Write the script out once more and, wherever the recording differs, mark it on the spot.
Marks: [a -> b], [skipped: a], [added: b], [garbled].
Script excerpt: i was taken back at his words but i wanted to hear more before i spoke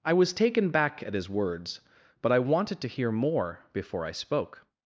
i was taken back at his words but i wanted to hear more before i spoke